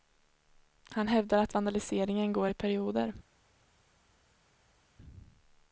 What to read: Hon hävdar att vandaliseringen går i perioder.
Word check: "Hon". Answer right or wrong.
wrong